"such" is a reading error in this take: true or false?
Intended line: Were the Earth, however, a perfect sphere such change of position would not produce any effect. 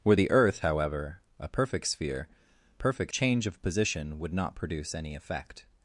true